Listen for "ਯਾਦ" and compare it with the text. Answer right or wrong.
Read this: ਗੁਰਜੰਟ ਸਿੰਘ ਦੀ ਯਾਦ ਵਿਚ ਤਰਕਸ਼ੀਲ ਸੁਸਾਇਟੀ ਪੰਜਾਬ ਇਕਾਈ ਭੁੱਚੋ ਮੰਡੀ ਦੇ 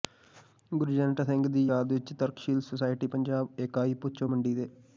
right